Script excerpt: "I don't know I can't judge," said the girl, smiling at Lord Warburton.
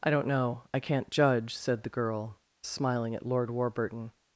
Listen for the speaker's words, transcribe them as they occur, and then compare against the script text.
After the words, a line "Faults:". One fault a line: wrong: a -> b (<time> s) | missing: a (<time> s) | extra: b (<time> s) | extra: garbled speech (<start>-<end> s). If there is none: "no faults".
"I don't know I can't judge," said the girl, smiling at Lord Warburton.
Faults:
no faults